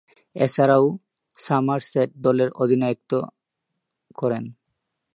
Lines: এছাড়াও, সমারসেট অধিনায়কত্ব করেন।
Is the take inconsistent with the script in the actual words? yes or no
yes